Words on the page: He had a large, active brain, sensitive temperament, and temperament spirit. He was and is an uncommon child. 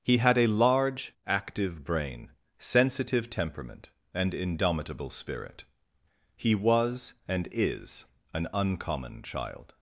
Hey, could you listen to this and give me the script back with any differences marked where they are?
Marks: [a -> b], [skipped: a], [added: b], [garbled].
He had a large, active brain, sensitive temperament, and [temperament -> indomitable] spirit. He was and is an uncommon child.